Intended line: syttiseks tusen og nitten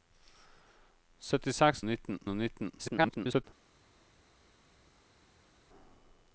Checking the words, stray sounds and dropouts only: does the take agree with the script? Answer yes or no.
no